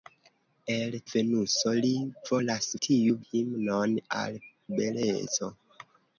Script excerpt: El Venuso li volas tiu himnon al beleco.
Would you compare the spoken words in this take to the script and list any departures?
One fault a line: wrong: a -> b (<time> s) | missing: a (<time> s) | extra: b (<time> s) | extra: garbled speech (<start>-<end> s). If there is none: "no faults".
no faults